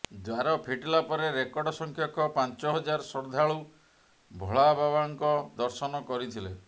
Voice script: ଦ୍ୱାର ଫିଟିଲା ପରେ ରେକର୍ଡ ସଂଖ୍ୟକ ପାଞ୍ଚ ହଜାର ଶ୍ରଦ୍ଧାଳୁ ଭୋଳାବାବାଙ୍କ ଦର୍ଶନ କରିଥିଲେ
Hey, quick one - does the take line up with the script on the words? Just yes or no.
yes